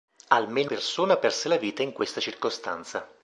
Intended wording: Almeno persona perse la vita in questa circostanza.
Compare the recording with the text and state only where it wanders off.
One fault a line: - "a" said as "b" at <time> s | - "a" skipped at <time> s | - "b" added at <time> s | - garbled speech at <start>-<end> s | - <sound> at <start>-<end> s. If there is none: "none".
none